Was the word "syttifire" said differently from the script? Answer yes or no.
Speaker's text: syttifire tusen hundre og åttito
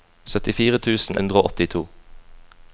no